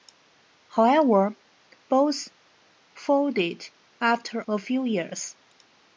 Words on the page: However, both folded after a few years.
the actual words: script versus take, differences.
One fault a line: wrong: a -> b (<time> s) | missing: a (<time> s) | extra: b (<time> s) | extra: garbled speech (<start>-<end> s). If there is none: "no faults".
no faults